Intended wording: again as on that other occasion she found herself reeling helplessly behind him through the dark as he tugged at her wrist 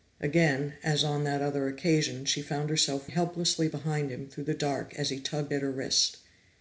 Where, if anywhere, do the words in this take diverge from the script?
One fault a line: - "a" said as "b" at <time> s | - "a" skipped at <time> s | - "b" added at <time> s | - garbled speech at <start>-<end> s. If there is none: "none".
- "reeling" skipped at 3.0 s